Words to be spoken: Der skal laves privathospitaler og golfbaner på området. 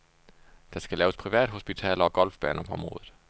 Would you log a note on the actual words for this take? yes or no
no